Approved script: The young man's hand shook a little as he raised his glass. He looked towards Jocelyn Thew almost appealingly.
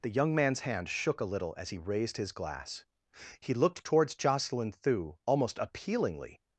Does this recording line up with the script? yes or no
yes